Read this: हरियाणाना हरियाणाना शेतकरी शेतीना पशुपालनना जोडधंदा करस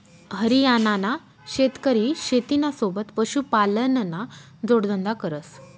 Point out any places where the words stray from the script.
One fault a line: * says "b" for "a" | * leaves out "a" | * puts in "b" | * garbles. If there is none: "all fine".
* leaves out "हरियाणाना"
* puts in "सोबत"